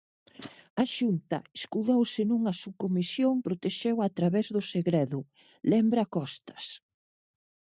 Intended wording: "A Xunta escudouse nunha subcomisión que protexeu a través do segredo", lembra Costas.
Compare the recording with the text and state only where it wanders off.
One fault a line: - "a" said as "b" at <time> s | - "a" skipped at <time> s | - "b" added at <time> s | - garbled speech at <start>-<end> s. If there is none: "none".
- "que" skipped at 3.4 s